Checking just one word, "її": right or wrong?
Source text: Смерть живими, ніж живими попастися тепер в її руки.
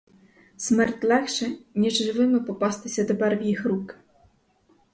wrong